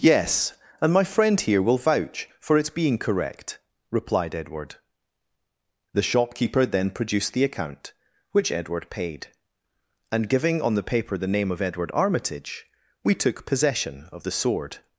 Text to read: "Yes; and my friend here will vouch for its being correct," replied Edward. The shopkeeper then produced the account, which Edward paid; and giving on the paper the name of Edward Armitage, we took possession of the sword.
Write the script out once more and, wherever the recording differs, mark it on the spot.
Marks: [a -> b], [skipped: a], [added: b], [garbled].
"Yes; and my friend here will vouch for its being correct," replied Edward. The shopkeeper then produced the account, which Edward paid; and giving on the paper the name of Edward Armitage, we took possession of the sword.